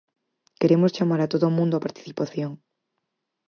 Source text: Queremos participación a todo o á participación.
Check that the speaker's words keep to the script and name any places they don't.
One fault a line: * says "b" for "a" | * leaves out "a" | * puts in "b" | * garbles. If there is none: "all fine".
* says "chamar" for "participación"
* puts in "mundo"